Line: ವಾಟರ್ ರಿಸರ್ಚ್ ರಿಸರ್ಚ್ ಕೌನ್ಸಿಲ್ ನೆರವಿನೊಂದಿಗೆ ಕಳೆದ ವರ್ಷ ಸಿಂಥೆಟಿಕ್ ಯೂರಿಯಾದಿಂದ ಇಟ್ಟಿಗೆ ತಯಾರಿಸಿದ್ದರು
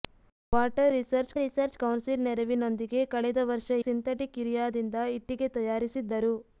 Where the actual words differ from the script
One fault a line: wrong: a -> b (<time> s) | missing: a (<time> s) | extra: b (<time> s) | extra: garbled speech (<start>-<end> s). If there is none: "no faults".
no faults